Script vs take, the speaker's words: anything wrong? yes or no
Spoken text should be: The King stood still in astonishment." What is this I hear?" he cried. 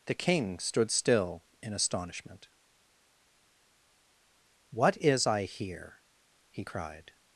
yes